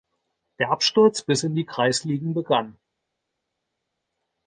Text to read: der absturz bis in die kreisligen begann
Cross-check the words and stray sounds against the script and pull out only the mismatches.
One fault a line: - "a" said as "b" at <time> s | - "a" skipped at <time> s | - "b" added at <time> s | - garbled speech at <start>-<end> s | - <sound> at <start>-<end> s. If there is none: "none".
none